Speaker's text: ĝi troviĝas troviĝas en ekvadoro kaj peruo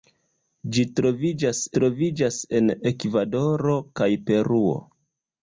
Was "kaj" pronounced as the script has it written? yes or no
yes